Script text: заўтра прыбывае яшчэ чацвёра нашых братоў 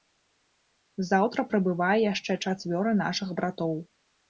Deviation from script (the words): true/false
false